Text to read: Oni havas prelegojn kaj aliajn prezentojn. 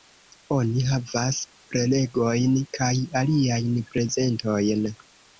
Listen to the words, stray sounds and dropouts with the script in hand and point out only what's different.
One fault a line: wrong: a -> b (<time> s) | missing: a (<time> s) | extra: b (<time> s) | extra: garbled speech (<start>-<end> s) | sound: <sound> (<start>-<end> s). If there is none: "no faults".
no faults